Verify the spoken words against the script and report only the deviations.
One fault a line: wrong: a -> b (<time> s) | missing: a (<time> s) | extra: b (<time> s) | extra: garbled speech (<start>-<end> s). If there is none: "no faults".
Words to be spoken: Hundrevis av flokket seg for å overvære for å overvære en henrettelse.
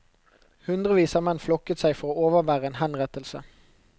extra: menn (1.3 s)
missing: for å overvære (2.7 s)